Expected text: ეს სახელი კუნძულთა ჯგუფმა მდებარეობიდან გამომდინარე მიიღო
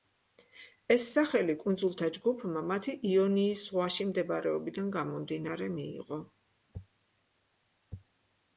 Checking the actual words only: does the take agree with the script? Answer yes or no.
no